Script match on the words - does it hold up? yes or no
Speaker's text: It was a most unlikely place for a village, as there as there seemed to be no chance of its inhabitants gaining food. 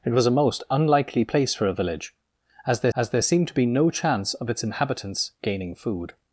yes